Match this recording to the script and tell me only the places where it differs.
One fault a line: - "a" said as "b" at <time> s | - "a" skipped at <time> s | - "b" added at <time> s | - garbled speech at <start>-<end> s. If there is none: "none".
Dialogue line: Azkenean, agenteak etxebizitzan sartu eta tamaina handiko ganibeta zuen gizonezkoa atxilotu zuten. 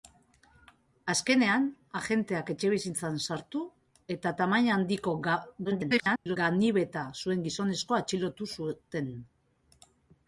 - garbled speech at 5.6-6.4 s